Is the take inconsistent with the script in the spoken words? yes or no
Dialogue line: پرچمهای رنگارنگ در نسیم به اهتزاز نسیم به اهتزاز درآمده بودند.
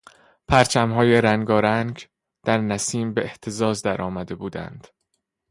yes